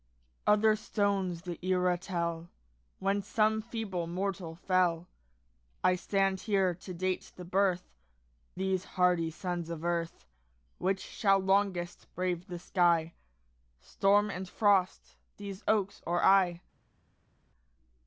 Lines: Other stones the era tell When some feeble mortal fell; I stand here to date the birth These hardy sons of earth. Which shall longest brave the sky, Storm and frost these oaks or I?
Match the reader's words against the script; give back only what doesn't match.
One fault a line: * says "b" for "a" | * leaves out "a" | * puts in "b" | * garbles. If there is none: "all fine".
all fine